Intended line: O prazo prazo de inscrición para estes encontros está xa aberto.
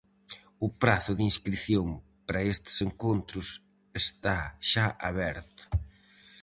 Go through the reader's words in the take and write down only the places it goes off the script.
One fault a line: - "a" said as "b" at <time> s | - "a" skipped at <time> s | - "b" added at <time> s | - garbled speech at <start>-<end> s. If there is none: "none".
- "prazo" skipped at 1.1 s